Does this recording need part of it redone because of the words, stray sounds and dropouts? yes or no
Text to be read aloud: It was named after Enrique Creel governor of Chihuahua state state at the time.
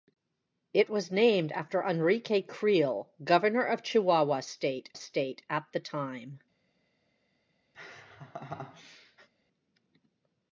yes